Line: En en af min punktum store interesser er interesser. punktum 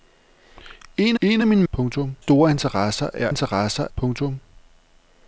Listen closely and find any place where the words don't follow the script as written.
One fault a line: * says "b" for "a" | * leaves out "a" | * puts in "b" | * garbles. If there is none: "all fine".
all fine